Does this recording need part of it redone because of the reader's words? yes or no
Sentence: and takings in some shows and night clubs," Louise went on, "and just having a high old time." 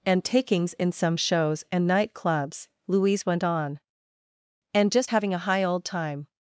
no